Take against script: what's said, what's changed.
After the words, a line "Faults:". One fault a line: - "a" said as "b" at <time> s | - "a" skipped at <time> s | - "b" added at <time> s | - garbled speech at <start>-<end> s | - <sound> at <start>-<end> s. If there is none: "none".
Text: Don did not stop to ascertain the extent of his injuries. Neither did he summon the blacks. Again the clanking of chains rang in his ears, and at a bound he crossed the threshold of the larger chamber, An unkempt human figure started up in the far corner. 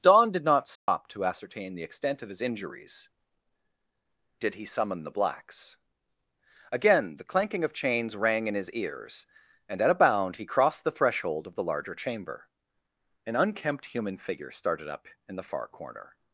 Don did not stop to ascertain the extent of his injuries. Did he summon the blacks. Again the clanking of chains rang in his ears, and at a bound he crossed the threshold of the larger chamber, An unkempt human figure started up in the far corner.
Faults:
- dropout at 0.8-0.9 s
- "Neither" skipped at 3.1 s